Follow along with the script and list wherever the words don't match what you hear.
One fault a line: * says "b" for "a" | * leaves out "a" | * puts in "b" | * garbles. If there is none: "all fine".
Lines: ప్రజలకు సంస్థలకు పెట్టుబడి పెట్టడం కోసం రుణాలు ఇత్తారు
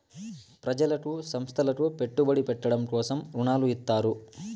all fine